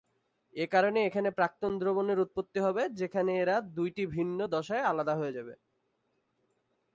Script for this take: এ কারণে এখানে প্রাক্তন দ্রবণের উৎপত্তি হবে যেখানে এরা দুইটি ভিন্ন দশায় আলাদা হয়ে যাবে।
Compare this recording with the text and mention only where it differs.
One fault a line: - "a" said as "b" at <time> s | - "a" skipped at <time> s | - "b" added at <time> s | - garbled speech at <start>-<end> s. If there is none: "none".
none